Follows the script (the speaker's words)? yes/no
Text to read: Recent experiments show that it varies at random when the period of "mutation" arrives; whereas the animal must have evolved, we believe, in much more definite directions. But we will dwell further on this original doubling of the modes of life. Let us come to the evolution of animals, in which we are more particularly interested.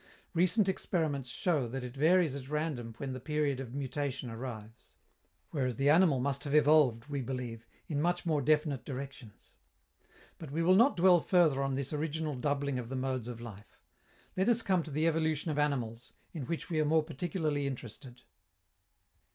no